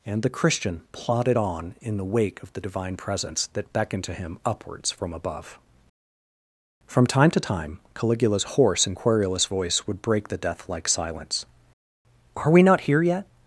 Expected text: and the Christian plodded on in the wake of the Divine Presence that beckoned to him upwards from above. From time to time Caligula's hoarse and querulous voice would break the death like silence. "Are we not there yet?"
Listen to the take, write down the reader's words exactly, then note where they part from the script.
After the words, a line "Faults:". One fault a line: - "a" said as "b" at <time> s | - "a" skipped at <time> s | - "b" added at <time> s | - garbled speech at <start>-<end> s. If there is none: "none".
and the Christian plodded on in the wake of the Divine Presence that beckoned to him upwards from above. From time to time Caligula's hoarse and querulous voice would break the death like silence. "Are we not here yet?"
Faults:
- "there" said as "here" at 12.8 s